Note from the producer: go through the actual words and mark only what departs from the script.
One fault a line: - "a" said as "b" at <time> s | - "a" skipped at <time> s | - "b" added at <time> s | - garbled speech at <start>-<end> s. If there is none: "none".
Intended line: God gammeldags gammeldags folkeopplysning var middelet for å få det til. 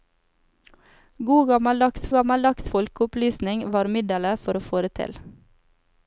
none